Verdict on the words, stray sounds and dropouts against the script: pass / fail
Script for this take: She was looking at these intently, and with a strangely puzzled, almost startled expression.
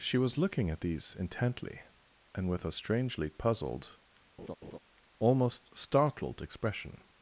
fail